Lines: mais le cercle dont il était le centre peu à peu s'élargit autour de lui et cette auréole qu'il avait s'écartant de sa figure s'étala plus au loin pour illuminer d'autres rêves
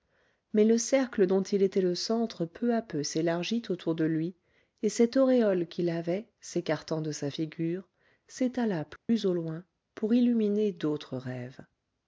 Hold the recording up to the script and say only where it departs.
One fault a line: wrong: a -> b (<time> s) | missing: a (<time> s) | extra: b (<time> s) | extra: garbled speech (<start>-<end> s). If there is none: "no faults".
no faults